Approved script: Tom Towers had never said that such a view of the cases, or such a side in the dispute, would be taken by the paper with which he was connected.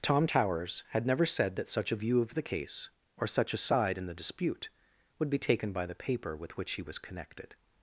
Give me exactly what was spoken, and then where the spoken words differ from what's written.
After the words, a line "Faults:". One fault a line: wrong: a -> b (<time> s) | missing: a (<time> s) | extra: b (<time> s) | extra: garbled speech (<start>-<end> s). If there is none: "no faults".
Tom Towers had never said that such a view of the case, or such a side in the dispute, would be taken by the paper with which he was connected.
Faults:
wrong: cases -> case (2.4 s)